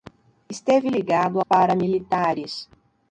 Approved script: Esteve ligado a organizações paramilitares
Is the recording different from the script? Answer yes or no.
yes